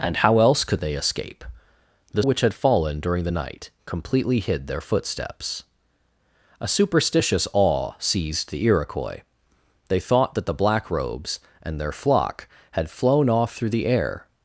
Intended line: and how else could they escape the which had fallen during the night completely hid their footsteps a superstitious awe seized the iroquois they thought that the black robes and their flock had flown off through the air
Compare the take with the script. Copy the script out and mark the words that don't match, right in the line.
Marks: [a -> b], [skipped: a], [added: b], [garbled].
and how else could they escape the which had fallen during the night completely hid their footsteps a superstitious awe seized the iroquois they thought that the black robes and their flock had flown off through the air